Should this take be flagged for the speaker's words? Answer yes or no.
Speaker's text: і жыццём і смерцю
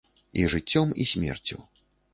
no